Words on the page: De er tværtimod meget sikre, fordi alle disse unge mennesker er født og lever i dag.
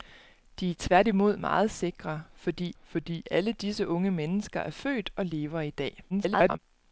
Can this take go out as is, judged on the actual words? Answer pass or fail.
fail